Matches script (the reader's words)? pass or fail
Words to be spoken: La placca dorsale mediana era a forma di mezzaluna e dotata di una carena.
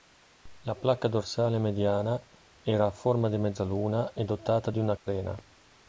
pass